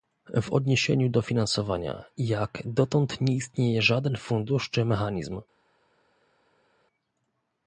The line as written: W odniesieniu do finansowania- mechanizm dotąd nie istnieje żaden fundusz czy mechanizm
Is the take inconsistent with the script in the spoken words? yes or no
yes